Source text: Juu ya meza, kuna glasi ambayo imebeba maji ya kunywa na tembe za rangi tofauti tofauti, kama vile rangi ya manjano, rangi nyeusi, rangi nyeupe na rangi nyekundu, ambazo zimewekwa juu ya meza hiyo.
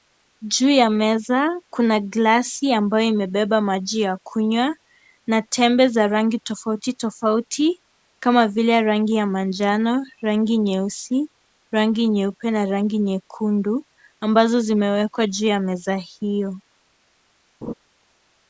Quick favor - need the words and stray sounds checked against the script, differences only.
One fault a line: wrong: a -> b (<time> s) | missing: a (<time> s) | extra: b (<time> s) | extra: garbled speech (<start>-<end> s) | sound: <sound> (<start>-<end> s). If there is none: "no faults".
sound: laugh (17.6-17.7 s)